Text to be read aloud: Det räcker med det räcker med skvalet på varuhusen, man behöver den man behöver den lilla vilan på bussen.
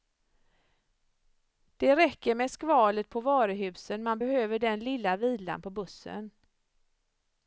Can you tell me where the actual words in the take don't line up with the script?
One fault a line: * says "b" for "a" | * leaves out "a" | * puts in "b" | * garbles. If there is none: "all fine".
* leaves out "det räcker med"
* leaves out "man behöver den"